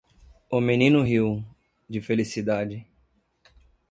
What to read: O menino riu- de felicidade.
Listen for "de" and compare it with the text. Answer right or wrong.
right